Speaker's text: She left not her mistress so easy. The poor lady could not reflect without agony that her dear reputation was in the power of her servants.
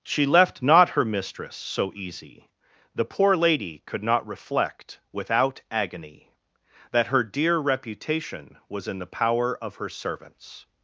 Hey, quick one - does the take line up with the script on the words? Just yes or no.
yes